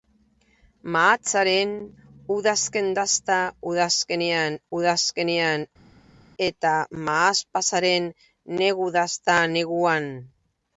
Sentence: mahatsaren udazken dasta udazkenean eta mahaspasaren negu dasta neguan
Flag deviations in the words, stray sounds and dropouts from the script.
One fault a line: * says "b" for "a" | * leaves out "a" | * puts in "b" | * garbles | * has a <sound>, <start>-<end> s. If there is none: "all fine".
* puts in "udazkenean"